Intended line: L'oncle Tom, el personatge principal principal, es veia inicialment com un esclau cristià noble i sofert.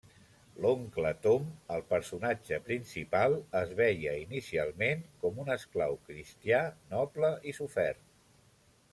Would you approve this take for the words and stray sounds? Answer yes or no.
no